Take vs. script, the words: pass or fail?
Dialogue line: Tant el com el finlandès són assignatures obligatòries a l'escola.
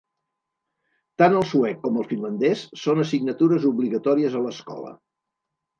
fail